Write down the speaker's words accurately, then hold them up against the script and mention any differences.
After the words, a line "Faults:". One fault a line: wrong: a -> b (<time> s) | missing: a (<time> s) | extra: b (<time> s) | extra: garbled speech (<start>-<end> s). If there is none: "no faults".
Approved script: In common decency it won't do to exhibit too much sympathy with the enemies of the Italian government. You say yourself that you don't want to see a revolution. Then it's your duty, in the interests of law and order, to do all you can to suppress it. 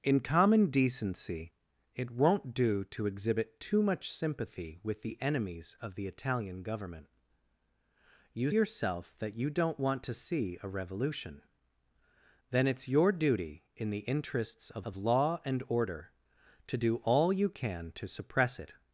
In common decency it won't do to exhibit too much sympathy with the enemies of the Italian government. You yourself that you don't want to see a revolution. Then it's your duty, in the interests of of law and order, to do all you can to suppress it.
Faults:
missing: say (8.5 s)
extra: of (14.8 s)